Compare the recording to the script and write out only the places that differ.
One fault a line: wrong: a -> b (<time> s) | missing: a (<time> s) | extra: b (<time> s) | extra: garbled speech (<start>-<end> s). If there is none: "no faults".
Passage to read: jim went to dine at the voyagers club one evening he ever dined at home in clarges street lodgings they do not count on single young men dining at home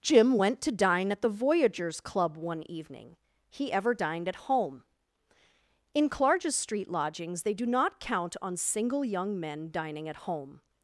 no faults